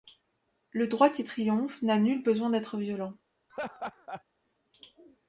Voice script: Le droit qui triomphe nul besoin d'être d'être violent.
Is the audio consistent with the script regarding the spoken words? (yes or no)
no